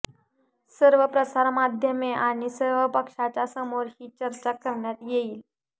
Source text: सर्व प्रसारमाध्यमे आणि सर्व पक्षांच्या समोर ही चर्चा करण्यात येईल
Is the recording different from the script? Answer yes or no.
no